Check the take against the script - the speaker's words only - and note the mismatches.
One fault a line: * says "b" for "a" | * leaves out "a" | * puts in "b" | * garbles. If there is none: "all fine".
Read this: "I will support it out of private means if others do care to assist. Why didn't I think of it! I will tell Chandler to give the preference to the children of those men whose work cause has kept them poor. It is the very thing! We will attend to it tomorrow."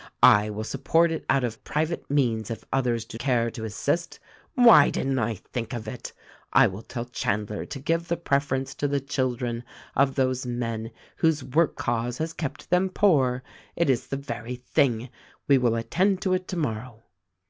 all fine